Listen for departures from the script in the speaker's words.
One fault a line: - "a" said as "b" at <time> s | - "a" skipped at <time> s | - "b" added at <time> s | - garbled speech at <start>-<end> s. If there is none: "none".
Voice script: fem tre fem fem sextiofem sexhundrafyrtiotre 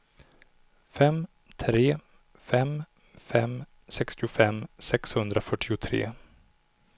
none